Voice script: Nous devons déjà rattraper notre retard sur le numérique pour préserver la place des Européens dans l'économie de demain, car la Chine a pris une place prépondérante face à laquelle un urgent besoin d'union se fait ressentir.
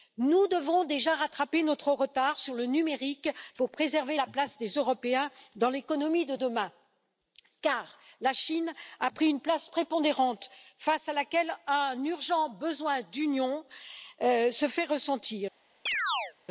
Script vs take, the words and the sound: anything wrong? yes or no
yes